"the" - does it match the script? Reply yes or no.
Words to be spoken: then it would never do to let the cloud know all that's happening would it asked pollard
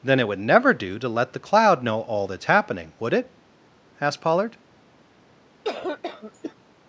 yes